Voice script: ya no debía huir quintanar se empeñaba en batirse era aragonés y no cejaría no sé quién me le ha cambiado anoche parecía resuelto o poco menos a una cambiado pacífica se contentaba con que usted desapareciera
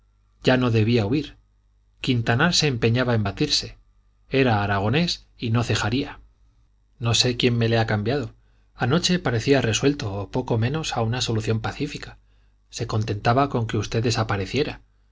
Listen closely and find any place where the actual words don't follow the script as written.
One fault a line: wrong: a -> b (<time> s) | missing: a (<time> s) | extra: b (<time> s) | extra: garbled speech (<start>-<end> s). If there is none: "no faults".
wrong: cambiado -> solución (11.2 s)